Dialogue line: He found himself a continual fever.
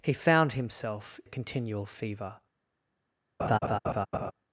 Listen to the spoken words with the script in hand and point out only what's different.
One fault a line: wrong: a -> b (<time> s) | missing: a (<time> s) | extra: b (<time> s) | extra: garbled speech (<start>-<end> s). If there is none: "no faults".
no faults